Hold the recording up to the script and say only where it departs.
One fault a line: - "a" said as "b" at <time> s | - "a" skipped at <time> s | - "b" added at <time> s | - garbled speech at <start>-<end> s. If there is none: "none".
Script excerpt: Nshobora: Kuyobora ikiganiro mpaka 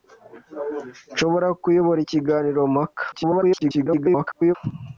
- garbled speech at 3.1-4.5 s